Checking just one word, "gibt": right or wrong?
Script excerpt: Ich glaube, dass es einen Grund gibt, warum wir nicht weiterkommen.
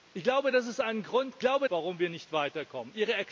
wrong